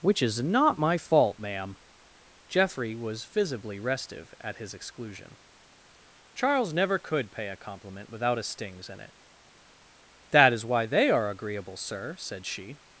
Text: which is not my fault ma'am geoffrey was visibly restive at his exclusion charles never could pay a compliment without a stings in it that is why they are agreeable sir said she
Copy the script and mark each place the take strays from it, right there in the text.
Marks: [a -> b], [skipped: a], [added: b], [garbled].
which is not my fault ma'am geoffrey was visibly restive at his exclusion charles never could pay a compliment without a stings in it that is why they are agreeable sir said she